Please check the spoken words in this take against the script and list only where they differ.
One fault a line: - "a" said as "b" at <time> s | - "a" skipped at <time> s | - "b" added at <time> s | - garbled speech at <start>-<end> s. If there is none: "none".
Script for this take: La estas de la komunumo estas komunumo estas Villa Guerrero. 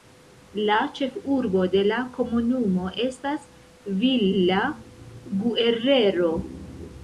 - "estas" said as "ĉefurbo" at 1.0 s
- "komunumo estas" skipped at 3.5 s